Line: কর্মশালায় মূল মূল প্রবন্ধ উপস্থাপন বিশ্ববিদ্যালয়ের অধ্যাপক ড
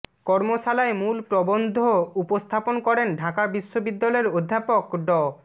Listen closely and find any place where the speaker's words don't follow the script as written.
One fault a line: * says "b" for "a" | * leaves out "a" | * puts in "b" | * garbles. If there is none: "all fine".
* leaves out "মূল"
* puts in "করেন ঢাকা"